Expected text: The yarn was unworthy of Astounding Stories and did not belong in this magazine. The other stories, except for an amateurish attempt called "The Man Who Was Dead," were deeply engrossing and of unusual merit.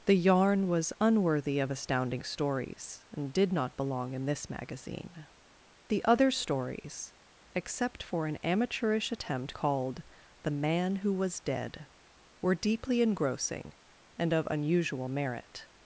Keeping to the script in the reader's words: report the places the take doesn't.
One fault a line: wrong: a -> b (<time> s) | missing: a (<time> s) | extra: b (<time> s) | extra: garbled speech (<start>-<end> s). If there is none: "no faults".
no faults